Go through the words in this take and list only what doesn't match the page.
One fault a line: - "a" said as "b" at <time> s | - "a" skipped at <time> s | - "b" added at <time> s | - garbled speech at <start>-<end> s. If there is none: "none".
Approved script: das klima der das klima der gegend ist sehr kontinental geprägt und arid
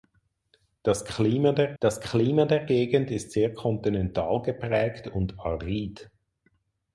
none